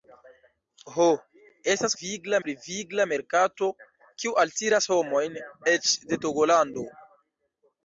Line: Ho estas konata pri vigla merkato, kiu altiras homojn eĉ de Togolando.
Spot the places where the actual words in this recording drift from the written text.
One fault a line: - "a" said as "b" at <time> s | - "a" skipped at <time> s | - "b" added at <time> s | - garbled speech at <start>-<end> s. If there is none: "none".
- "konata" said as "vigla" at 2.0 s